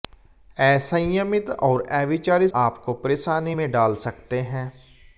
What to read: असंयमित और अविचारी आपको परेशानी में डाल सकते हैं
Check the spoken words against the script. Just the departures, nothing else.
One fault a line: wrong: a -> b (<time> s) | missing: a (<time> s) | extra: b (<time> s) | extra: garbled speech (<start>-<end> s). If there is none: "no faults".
no faults